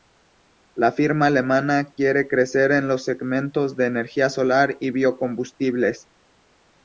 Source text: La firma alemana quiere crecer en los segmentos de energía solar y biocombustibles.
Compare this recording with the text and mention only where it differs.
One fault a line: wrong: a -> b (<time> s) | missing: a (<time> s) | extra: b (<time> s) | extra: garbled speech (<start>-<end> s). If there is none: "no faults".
no faults